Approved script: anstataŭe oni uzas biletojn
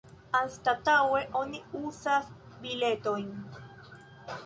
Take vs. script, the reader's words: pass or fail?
pass